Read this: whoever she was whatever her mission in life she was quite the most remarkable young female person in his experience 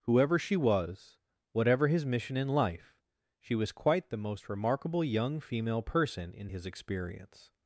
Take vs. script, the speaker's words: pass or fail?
fail